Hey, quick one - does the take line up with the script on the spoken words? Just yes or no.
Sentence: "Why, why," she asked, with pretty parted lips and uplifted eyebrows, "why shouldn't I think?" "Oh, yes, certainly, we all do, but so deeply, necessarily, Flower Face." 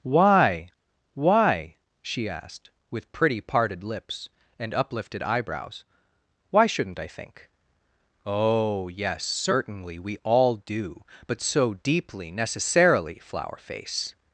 yes